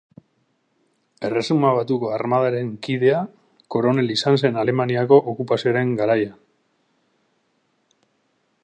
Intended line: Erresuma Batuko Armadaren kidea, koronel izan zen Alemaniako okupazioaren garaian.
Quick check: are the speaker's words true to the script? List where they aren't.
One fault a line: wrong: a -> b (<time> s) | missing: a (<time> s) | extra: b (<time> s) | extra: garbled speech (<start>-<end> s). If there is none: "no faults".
no faults